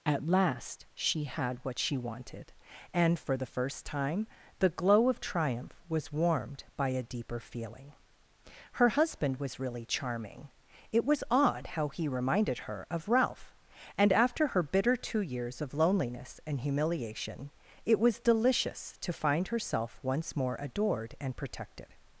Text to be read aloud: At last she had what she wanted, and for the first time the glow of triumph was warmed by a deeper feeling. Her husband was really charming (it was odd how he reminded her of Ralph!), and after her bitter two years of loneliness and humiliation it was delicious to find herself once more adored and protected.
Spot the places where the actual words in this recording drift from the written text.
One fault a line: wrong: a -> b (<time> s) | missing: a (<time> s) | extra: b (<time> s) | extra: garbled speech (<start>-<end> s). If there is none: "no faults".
no faults